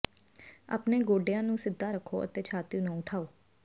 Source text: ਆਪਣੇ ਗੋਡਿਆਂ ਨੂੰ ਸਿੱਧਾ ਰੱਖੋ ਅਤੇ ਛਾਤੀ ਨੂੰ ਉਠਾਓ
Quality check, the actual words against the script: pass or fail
pass